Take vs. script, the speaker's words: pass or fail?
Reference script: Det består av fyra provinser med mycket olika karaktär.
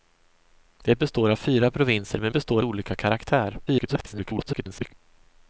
fail